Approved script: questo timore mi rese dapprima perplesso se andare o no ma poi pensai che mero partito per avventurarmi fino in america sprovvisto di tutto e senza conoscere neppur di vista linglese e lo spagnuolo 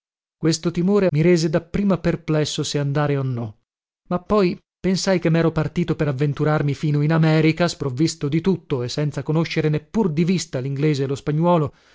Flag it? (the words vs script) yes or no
no